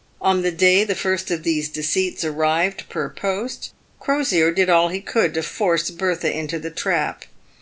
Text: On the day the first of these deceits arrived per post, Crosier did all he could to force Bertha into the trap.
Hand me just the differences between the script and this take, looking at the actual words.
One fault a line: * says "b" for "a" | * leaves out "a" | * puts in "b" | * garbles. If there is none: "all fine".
all fine